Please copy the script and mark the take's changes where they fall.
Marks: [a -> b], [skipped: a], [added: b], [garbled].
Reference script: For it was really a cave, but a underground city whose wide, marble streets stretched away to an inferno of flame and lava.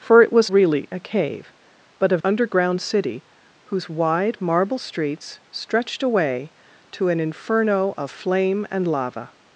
For it was really a cave, but a underground city whose wide, marble streets stretched away to an inferno of flame and lava.